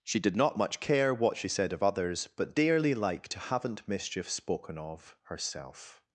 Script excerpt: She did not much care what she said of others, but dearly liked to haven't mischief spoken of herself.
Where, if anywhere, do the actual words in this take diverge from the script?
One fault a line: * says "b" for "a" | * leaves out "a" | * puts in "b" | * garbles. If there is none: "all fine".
all fine